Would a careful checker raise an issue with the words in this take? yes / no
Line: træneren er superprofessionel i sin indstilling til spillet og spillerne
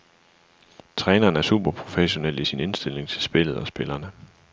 no